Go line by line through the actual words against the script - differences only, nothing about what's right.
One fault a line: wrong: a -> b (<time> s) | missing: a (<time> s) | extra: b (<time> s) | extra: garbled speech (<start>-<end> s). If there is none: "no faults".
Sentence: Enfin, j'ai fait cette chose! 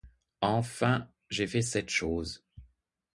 no faults